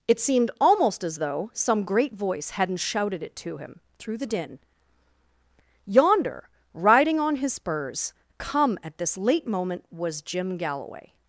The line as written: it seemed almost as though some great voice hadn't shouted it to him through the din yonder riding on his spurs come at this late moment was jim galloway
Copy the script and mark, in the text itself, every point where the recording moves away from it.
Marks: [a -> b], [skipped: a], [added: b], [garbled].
it seemed almost as though some great voice hadn't shouted it to him through the din yonder riding on his spurs come at this late moment was jim galloway